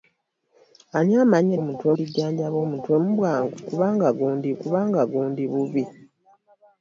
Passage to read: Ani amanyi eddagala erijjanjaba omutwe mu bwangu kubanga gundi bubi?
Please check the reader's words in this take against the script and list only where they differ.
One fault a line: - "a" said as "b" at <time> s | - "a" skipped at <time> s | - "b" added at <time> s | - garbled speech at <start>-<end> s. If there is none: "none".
- "eddagala" said as "omutwe" at 1.6 s
- "kubanga gundi" added at 4.6 s